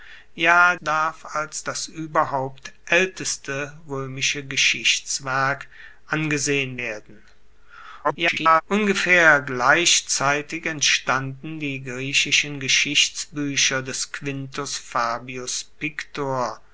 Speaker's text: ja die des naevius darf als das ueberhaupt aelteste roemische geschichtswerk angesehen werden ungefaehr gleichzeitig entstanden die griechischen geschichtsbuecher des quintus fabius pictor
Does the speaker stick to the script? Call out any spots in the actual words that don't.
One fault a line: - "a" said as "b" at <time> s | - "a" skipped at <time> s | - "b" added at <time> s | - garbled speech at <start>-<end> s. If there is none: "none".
- "die des naevius" skipped at 0.8 s
- garbled speech at 8.0-8.6 s